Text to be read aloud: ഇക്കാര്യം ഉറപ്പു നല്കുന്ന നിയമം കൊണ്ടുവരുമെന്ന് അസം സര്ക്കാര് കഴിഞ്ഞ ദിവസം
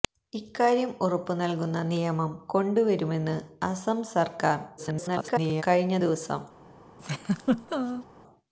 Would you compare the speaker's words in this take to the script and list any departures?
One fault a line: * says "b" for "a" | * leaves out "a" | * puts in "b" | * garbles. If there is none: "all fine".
* garbles